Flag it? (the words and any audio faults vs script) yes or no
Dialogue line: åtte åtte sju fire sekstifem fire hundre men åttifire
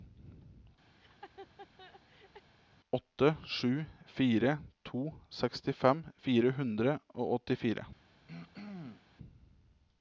yes